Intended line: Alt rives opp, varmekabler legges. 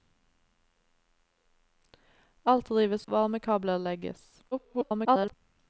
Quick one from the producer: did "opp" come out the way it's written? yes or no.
no